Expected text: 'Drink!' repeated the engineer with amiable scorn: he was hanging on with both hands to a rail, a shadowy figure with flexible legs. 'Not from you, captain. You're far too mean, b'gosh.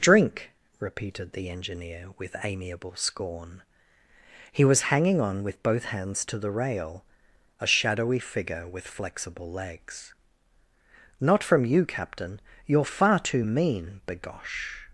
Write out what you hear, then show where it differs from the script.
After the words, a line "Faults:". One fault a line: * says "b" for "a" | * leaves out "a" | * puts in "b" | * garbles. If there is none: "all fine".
'Drink!' repeated the engineer with amiable scorn: he was hanging on with both hands to the rail, a shadowy figure with flexible legs. 'Not from you, captain. You're far too mean, b'gosh.
Faults:
* says "the" for "a"